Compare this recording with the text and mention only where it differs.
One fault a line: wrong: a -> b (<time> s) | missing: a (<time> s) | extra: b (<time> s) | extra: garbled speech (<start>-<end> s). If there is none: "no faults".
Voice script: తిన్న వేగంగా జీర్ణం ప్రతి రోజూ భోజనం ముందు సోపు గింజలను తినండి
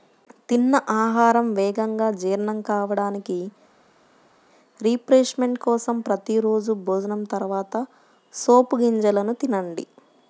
extra: ఆహారం (1.0 s)
extra: కావడానికి రిఫ్రెష్మెంట్ కోసం (2.7 s)
wrong: ముందు -> తర్వాత (7.3 s)